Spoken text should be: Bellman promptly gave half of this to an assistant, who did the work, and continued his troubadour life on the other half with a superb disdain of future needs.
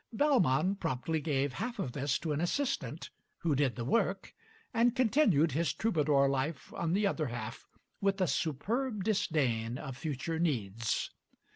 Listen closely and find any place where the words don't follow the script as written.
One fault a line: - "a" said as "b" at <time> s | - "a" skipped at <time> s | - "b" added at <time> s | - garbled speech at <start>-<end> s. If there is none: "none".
none